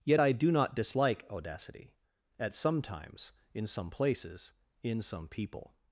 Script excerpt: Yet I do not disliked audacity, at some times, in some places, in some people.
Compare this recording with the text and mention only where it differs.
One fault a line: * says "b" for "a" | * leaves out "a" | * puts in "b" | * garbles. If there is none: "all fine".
* says "dislike" for "disliked"